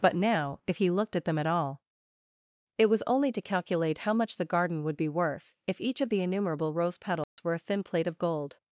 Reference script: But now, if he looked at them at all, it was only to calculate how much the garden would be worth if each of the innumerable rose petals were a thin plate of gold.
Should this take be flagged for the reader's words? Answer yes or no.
no